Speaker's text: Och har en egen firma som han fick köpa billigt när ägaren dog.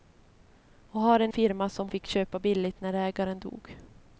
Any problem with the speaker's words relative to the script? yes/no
yes